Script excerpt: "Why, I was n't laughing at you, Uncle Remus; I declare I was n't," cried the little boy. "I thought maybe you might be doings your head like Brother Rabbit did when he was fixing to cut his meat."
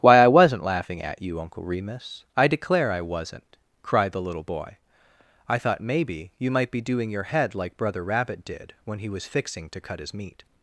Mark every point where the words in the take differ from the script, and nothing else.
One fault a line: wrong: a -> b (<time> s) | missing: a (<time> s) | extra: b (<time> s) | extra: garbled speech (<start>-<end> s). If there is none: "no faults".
wrong: doings -> doing (6.8 s)